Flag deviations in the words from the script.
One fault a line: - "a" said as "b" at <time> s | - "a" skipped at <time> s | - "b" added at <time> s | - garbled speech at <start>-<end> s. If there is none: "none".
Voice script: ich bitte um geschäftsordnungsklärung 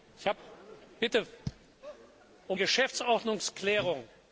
none